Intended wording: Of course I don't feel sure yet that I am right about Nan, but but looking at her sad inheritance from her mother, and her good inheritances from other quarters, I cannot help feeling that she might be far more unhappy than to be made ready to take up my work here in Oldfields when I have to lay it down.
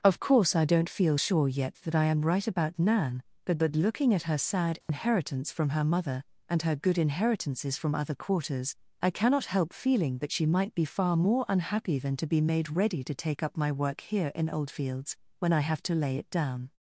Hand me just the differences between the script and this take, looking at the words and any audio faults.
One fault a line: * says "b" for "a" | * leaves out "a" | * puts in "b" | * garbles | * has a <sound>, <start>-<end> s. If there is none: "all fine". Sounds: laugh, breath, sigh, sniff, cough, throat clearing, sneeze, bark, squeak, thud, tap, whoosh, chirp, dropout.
* has a dropout, 4.8-4.9 s